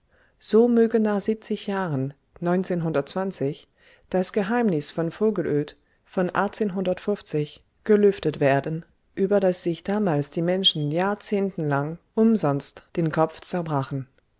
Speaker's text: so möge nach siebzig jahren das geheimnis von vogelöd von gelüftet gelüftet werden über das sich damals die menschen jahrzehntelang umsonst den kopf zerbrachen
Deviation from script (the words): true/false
true